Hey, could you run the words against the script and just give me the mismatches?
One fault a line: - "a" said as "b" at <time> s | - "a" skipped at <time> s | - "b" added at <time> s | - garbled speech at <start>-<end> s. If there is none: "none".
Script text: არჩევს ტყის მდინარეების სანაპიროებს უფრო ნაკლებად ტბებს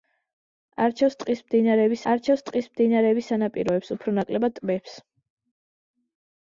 - "არჩევს ტყის მდინარეების" added at 2.1 s